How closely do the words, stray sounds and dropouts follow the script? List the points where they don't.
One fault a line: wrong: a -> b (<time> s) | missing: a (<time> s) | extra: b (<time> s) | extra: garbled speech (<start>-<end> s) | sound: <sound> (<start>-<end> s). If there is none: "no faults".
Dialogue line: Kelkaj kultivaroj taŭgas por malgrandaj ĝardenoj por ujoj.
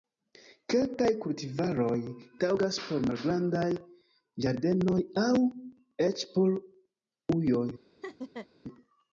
extra: aŭ eĉ (5.2 s)
sound: laugh (8.0-8.5 s)